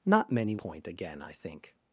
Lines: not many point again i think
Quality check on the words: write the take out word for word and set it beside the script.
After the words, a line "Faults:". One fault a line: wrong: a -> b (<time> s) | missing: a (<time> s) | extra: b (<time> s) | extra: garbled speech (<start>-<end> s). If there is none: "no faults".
not many point again i think
Faults:
no faults